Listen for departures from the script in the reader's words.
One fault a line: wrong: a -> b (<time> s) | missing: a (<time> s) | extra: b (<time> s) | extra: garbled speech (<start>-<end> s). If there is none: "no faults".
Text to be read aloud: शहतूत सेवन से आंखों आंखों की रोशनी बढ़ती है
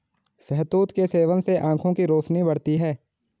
extra: के (0.9 s)
missing: आंखों (1.9 s)